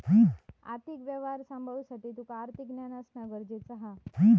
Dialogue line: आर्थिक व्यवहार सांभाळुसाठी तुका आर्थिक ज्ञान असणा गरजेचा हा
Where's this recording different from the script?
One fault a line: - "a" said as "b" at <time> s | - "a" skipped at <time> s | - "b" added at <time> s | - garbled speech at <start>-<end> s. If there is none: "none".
none